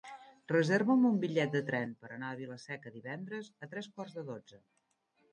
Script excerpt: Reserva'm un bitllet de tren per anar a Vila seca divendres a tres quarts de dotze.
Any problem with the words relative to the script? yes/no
no